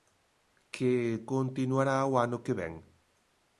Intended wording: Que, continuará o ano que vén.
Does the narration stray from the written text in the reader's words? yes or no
no